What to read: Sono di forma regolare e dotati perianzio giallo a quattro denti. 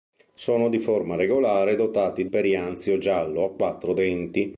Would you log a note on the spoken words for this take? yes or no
no